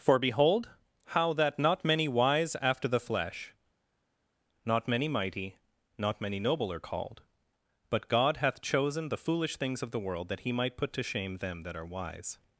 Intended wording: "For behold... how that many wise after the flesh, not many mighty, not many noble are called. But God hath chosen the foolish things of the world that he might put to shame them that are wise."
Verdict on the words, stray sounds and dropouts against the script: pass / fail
fail